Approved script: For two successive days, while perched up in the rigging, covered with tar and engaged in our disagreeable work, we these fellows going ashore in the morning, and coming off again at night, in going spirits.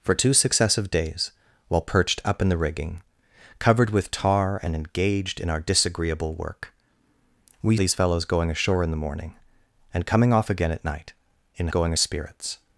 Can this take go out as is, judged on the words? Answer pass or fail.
pass